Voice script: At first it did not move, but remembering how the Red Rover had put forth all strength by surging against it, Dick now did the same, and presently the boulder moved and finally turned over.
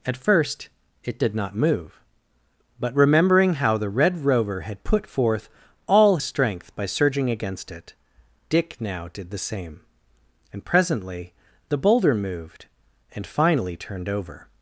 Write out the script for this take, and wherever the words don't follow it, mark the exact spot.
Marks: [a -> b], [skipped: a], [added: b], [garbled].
At first it did not move, but remembering how the Red Rover had put forth all strength by surging against it, Dick now did the same, and presently the boulder moved and finally turned over.